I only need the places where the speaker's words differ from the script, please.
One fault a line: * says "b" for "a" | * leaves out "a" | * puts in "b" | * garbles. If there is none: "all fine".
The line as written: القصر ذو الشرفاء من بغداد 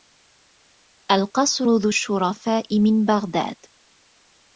all fine